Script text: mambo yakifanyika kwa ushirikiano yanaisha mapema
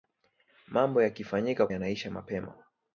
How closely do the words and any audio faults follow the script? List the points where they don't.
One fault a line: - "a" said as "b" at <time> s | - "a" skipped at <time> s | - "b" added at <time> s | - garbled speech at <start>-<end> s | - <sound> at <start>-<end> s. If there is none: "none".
- "kwa ushirikiano" skipped at 1.7 s